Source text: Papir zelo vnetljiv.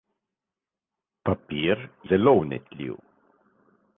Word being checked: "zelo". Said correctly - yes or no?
yes